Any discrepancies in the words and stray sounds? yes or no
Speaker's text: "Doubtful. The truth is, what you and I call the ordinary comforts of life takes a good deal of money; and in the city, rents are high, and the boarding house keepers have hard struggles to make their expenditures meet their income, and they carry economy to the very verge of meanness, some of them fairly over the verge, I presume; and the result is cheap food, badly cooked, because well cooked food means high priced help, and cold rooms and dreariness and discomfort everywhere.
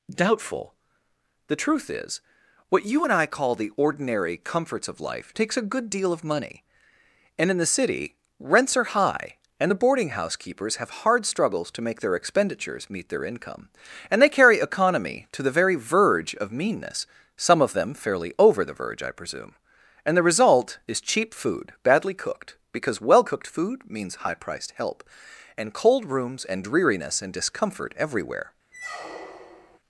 yes